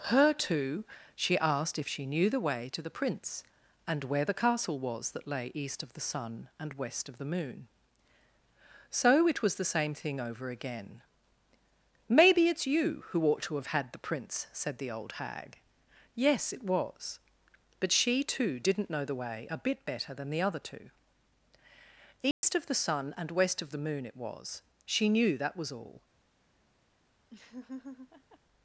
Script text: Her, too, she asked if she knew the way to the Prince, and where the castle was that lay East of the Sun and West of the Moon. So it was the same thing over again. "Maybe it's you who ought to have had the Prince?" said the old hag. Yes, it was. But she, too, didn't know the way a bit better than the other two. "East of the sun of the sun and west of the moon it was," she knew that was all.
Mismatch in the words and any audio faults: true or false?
true